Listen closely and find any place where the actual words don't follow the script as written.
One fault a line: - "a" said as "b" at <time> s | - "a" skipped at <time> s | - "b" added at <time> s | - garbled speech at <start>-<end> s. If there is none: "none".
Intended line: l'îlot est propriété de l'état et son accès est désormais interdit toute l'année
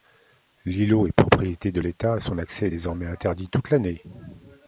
none